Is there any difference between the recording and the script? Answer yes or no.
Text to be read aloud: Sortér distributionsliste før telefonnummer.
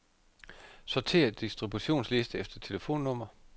yes